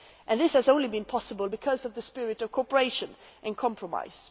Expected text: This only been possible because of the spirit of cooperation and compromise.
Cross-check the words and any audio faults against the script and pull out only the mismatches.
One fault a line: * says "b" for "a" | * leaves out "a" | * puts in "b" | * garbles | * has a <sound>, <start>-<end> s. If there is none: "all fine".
* puts in "has"